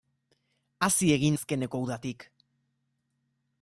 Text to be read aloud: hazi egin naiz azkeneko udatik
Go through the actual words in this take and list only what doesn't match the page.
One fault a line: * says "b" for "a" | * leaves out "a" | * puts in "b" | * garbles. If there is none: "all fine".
* leaves out "naiz"